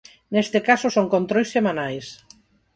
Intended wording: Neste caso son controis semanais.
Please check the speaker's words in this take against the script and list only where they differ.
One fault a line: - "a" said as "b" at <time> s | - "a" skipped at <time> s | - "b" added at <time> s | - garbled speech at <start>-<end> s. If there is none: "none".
none